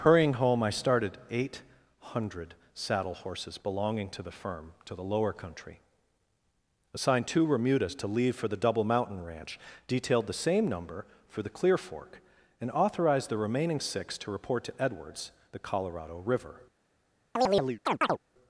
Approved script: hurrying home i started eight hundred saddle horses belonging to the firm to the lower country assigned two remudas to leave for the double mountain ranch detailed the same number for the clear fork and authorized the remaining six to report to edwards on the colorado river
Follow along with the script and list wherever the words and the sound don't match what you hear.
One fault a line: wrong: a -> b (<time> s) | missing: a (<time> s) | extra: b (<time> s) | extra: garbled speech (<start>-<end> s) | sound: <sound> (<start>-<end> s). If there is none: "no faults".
missing: on (15.3 s)
sound: chirp (17.4-18.2 s)